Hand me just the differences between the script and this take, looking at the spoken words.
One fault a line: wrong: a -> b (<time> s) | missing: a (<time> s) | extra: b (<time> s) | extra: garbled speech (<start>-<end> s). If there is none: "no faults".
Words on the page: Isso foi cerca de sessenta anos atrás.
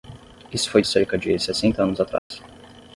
no faults